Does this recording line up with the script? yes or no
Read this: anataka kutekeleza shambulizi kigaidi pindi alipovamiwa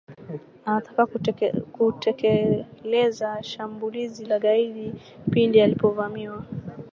no